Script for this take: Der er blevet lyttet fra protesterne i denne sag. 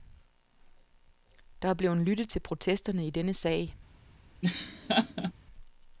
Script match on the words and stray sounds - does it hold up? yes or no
no